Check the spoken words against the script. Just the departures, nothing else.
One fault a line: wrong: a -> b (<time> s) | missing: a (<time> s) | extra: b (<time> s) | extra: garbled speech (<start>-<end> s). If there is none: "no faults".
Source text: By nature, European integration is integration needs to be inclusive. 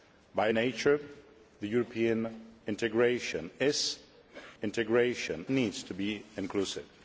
no faults